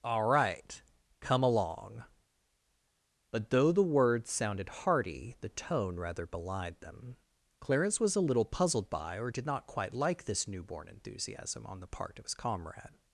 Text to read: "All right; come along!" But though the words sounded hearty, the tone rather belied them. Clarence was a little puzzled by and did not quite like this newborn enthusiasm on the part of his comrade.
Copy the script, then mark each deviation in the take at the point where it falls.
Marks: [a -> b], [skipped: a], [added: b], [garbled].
"All right; come along!" But though the words sounded hearty, the tone rather belied them. Clarence was a little puzzled by [and -> or] did not quite like this newborn enthusiasm on the part of his comrade.